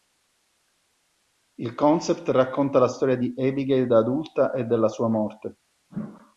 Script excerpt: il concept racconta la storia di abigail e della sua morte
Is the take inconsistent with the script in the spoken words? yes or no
yes